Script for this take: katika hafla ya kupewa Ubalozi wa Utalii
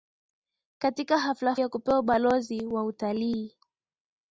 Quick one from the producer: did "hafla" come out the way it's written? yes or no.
yes